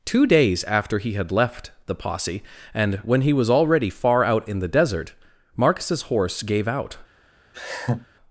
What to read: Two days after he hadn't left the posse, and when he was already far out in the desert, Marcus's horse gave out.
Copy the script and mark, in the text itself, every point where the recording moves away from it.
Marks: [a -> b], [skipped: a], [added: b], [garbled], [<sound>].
Two days after he [hadn't -> had] left the posse, and when he was already far out in the desert, Marcus's horse gave out. [laugh]